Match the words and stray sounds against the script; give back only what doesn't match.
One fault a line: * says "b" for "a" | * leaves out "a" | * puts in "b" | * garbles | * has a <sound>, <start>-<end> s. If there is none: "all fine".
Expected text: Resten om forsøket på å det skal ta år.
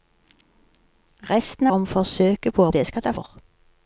all fine